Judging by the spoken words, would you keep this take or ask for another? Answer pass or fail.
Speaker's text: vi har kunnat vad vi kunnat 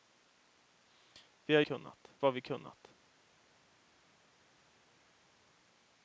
pass